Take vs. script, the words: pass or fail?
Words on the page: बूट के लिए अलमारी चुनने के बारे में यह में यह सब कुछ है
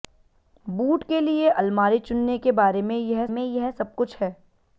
pass